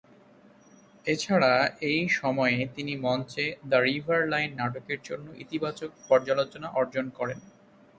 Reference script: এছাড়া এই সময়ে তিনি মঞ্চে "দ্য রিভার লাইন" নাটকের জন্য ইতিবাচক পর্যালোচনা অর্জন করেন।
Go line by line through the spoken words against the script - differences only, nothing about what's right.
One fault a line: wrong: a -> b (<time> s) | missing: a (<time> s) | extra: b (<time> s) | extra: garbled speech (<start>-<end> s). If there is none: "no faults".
no faults